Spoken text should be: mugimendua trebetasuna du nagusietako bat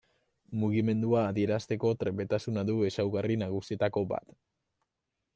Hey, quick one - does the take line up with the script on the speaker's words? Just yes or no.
no